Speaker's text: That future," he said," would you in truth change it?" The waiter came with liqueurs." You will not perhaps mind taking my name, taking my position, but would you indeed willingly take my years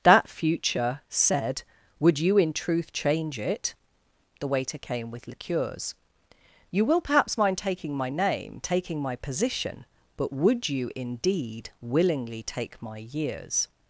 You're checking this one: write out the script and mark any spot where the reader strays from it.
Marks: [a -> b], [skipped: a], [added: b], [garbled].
That future," [skipped: he] said," would you in truth change it?" The waiter came with liqueurs." You will [skipped: not] perhaps mind taking my name, taking my position, but would you indeed willingly take my years